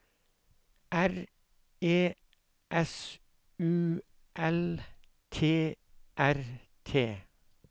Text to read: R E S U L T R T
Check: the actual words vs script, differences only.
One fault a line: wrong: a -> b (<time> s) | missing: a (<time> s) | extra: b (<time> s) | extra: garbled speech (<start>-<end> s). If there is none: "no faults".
no faults